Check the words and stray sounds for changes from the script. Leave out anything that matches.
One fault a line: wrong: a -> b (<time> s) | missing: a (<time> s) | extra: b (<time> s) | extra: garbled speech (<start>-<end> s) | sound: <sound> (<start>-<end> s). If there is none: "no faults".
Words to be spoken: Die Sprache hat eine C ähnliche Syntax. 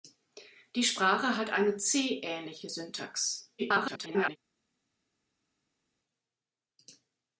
extra: garbled speech (3.6-4.4 s)